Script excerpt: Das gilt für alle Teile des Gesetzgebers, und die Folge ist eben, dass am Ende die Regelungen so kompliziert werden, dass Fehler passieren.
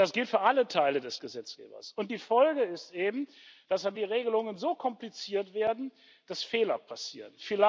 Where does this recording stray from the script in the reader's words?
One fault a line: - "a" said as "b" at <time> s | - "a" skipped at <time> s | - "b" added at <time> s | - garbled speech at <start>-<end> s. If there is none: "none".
- "Ende" skipped at 4.0 s